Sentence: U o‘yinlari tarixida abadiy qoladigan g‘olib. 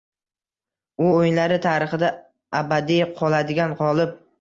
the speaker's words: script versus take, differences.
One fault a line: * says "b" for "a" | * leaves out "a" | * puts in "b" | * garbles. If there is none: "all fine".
all fine